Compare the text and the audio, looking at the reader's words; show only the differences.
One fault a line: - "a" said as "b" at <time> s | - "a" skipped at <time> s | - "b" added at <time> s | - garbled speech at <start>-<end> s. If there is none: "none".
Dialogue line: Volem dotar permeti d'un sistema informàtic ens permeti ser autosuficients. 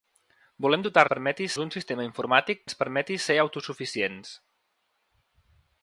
none